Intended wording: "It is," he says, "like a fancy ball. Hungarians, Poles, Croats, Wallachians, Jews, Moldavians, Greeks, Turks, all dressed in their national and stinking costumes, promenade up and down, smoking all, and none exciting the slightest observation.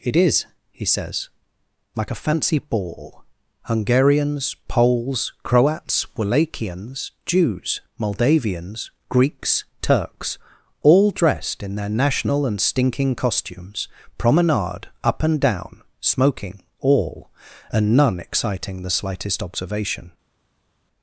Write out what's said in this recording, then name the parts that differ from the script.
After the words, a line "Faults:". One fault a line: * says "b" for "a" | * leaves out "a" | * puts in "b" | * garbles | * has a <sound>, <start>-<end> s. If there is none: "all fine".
"It is," he says, "like a fancy ball. Hungarians, Poles, Croats, Wallachians, Jews, Moldavians, Greeks, Turks, all dressed in their national and stinking costumes, promenade up and down, smoking all, and none exciting the slightest observation.
Faults:
all fine